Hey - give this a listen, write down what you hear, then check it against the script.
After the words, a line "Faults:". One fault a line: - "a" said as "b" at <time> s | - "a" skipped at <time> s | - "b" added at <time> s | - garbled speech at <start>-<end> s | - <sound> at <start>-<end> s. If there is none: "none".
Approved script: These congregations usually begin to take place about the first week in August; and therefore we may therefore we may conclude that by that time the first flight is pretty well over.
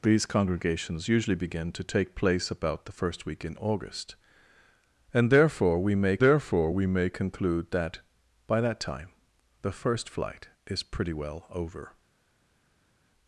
These congregations usually begin to take place about the first week in August; and therefore we may therefore we may conclude that by that time the first flight is pretty well over.
Faults:
none